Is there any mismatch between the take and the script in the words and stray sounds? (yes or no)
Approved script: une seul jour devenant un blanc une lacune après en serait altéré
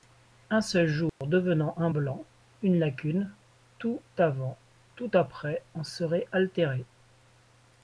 yes